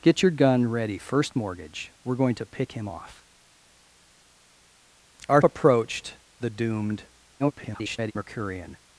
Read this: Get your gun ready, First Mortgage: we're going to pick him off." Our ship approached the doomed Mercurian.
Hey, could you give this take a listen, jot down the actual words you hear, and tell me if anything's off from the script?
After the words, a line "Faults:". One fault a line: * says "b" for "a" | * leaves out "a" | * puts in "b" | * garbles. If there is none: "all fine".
Get your gun ready, First Mortgage: we're going to pick him off." Our approached the doomed [garbled] Mercurian.
Faults:
* leaves out "ship"
* garbles